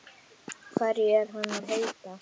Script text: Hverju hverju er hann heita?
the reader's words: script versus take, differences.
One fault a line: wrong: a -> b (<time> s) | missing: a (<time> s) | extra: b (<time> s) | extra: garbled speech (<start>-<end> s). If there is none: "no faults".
missing: hverju (1.1 s)
extra: að (1.6 s)